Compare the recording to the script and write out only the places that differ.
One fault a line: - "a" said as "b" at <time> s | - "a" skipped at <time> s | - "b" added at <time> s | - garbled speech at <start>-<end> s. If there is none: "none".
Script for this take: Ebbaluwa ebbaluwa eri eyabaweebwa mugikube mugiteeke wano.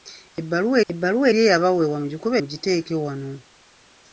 none